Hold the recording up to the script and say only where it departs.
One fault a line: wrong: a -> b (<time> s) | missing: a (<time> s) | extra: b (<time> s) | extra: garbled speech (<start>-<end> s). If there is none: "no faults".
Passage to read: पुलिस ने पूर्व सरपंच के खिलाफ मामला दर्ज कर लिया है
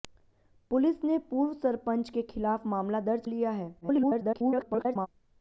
missing: कर (3.2 s)
extra: garbled speech (3.8-5.1 s)